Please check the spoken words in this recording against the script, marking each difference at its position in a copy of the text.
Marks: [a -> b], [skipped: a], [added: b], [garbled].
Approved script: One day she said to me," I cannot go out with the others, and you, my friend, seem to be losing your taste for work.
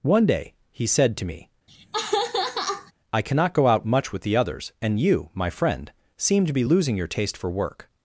One day [she -> he] said to me," I cannot go out [added: much] with the others, and you, my friend, seem to be losing your taste for work.